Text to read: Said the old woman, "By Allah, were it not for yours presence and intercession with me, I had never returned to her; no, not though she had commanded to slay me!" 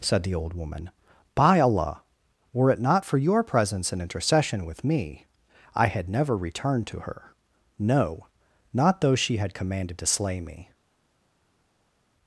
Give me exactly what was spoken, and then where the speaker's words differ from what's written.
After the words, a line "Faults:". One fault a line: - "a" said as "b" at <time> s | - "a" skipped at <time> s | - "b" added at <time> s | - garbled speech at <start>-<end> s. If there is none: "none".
Said the old woman, "By Allah, were it not for your presence and intercession with me, I had never returned to her; no, not though she had commanded to slay me!"
Faults:
- "yours" said as "your" at 3.2 s